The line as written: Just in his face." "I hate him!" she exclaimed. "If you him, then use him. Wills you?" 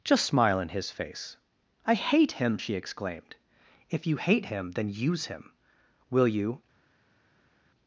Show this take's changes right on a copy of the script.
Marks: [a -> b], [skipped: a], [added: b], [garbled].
Just [added: smile] in his face." "I hate him!" she exclaimed. "If you [added: hate] him, then use him. [Wills -> Will] you?"